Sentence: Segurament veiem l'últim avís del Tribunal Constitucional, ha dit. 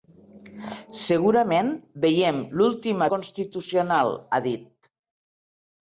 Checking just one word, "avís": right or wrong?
wrong